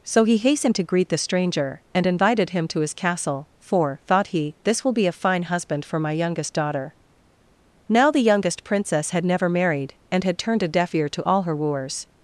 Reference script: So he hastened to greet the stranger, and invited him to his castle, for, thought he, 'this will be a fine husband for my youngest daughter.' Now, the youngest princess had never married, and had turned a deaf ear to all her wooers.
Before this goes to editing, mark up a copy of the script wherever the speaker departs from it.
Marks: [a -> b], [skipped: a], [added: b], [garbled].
So he hastened to greet the stranger, and invited him to his castle, for, thought he, 'this will be a fine husband for my youngest daughter.' Now, the youngest princess had never married, and had turned a deaf ear to all her wooers.